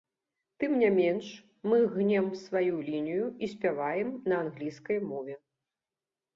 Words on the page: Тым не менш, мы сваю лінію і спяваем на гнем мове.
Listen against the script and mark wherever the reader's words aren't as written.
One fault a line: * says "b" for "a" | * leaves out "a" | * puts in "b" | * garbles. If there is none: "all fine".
* puts in "гнем"
* says "англійскай" for "гнем"